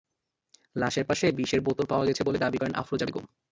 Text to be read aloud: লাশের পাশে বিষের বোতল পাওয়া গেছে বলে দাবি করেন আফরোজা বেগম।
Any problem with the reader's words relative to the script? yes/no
no